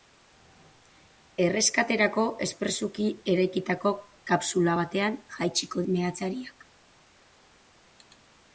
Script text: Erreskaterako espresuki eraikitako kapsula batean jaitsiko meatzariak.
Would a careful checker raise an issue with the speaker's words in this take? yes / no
no